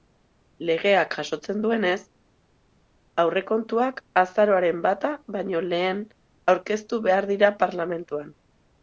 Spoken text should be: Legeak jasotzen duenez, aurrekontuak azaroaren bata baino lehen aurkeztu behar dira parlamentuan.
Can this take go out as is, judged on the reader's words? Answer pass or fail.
pass